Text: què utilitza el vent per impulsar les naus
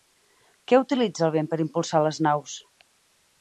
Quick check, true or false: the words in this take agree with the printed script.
true